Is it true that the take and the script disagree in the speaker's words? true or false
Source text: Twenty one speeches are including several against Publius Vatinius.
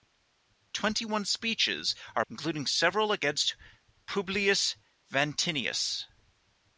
false